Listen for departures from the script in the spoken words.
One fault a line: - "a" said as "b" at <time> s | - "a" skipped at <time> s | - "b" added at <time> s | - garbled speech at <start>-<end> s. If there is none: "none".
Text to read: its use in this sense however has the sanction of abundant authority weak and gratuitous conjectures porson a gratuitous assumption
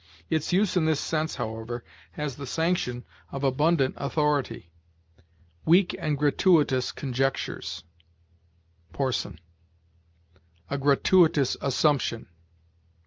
none